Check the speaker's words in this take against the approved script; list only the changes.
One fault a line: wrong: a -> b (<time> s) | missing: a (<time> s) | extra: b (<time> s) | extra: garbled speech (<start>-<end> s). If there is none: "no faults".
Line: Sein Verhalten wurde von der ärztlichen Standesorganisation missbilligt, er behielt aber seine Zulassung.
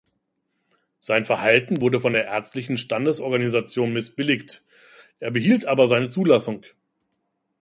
no faults